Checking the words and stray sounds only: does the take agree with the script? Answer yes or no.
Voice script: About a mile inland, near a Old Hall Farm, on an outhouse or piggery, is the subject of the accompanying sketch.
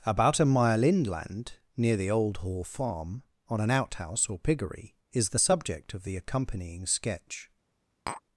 no